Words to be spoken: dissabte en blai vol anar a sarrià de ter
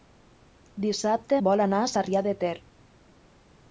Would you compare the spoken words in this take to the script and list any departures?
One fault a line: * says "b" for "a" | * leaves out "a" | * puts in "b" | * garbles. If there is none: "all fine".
* leaves out "en blai"